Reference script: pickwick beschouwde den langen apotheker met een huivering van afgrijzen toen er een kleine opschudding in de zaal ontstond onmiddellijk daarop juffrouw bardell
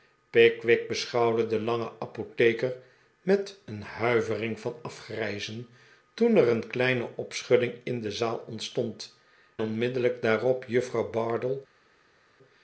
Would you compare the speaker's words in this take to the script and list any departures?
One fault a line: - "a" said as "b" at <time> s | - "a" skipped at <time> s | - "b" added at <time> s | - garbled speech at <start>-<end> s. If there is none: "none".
none